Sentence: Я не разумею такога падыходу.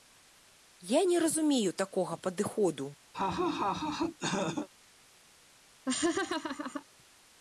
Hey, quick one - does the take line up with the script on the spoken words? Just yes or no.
yes